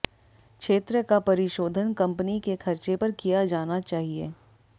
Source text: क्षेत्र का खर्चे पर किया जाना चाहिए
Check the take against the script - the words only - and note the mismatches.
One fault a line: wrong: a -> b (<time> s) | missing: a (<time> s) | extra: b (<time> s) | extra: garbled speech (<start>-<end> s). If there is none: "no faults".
extra: परिशोधन कंपनी के (1.2 s)